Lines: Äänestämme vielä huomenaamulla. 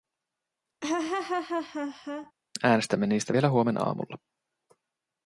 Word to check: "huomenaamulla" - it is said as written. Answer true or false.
true